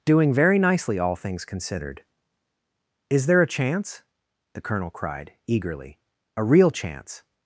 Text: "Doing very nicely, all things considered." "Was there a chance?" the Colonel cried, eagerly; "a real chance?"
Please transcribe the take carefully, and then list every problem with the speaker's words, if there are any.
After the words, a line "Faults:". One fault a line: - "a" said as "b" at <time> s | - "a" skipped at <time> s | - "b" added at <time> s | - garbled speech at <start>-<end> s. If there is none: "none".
"Doing very nicely, all things considered." "Is there a chance?" the Colonel cried, eagerly; "a real chance?"
Faults:
- "Was" said as "Is" at 3.1 s